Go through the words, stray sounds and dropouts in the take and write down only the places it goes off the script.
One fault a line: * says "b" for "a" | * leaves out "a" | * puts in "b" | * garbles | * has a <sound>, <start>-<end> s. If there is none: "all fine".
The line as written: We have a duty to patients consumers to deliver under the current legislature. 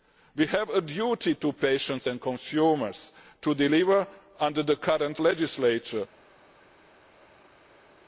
* puts in "and"